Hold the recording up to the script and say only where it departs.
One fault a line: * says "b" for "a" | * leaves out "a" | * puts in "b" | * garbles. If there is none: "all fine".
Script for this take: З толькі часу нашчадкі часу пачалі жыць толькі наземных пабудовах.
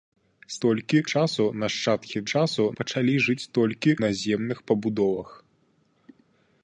all fine